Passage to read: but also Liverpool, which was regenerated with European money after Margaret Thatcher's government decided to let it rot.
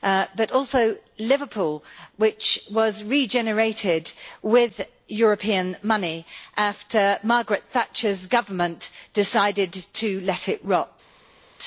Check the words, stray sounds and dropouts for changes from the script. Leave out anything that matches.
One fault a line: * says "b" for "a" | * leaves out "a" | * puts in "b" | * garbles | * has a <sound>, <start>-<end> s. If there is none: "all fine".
all fine